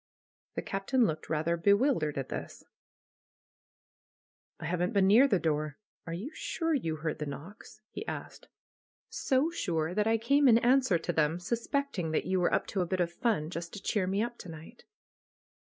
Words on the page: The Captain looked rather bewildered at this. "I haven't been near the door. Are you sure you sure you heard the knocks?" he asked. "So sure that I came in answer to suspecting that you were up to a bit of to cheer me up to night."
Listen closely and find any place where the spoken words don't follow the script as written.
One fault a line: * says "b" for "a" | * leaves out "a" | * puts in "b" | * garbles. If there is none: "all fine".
* leaves out "sure you"
* puts in "them"
* puts in "fun just"